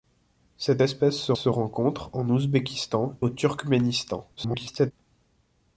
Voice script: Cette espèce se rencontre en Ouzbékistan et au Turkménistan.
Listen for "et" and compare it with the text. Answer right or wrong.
wrong